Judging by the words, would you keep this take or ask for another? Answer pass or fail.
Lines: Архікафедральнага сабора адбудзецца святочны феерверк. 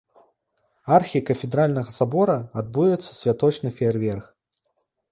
pass